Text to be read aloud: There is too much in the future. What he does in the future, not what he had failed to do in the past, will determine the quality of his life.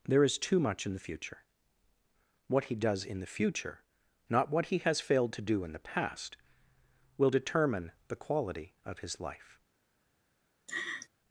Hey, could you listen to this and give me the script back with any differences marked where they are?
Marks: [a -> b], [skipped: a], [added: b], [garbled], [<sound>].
There is too much in the future. What he does in the future, not what he [had -> has] failed to do in the past, will determine the quality of his life. [laugh]